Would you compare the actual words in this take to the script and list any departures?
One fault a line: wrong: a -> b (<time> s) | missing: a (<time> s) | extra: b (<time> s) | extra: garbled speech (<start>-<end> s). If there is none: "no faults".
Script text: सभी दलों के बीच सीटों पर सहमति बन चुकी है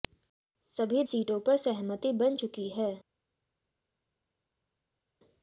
missing: दलों के बीच (1.0 s)